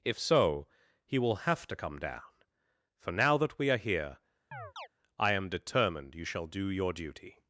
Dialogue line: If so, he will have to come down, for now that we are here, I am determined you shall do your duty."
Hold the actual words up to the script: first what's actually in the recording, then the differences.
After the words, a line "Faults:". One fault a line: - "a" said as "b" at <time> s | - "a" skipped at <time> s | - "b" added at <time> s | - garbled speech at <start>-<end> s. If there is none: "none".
If so, he will have to come down, for now that we are here, I am determined you shall do your duty."
Faults:
none